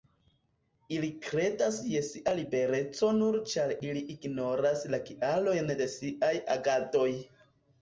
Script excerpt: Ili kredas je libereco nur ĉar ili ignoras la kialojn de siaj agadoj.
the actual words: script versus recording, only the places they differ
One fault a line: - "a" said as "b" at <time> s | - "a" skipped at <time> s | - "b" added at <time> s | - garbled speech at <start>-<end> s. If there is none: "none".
- "sia" added at 2.1 s